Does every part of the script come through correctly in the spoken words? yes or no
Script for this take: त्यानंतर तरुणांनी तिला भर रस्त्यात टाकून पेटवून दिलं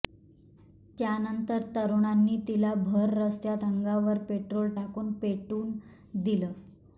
no